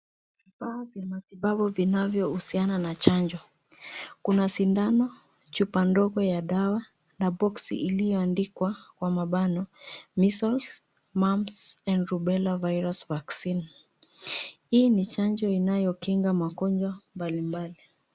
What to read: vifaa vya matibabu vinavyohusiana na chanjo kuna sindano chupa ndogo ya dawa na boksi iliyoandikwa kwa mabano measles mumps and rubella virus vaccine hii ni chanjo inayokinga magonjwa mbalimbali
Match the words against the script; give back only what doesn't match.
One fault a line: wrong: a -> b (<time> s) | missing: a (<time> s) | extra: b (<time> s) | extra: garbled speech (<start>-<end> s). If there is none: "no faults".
no faults